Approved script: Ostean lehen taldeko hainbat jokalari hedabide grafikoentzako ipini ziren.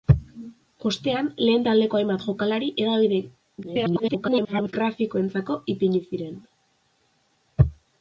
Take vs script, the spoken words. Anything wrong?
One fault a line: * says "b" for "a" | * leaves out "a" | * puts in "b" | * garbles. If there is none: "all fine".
* garbles